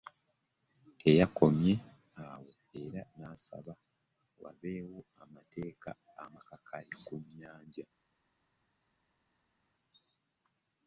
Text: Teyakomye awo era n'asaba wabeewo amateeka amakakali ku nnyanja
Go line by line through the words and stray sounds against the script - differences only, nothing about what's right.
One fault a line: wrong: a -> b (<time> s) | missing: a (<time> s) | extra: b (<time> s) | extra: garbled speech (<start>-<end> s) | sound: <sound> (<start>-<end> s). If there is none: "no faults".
no faults